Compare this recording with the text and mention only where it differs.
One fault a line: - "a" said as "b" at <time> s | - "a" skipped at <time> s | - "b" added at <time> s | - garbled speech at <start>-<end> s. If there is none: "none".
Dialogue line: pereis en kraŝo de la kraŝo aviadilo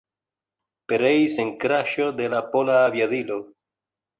- "kraŝo" said as "pola" at 2.5 s